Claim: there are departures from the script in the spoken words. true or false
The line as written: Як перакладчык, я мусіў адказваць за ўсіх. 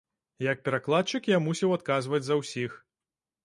false